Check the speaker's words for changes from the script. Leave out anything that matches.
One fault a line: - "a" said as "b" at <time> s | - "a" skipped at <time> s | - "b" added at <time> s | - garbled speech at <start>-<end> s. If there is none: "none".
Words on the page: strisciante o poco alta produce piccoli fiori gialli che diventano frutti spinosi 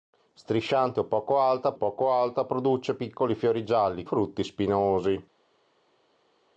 - "poco alta" added at 1.7 s
- "che diventano" skipped at 4.1 s